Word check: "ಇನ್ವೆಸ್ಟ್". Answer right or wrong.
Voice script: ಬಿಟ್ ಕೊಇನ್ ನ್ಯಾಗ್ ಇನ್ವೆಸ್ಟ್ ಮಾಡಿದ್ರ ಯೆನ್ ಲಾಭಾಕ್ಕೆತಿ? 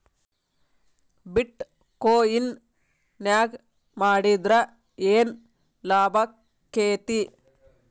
wrong